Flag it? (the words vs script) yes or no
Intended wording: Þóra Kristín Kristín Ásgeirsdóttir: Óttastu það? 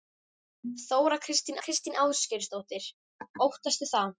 no